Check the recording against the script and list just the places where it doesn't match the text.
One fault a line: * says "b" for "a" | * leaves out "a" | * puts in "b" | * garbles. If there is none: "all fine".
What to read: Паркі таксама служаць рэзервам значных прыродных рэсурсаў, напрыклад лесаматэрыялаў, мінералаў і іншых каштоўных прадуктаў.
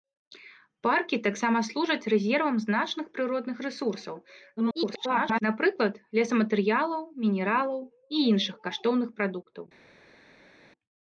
* garbles